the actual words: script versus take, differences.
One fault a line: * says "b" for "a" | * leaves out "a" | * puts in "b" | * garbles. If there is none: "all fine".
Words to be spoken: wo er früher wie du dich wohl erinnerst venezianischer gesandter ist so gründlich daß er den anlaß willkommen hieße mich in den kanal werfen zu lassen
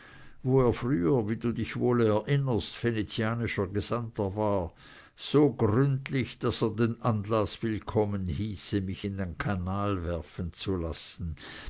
* says "war" for "ist"